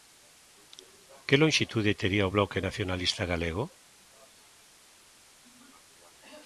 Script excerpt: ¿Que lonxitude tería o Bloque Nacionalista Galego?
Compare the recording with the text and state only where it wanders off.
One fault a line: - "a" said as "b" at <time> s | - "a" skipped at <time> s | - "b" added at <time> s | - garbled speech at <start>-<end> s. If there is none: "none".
none